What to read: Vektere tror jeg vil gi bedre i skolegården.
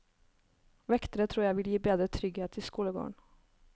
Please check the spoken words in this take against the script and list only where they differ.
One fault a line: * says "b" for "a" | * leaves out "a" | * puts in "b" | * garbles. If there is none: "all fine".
* puts in "trygghet"